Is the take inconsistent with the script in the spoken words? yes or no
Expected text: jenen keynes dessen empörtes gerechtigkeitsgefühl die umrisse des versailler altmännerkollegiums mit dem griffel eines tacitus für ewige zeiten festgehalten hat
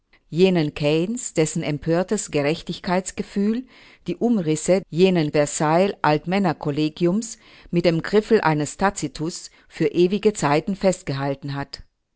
yes